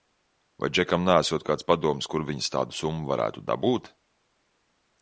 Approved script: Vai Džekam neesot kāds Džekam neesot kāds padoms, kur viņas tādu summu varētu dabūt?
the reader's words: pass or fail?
fail